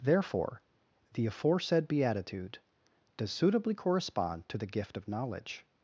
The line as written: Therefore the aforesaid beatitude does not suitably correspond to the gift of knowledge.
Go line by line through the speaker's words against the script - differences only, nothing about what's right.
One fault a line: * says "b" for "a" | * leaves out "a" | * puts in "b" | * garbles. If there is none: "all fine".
* leaves out "not"